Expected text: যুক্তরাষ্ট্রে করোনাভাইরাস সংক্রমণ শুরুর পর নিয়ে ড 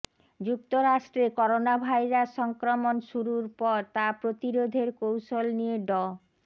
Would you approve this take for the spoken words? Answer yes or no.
no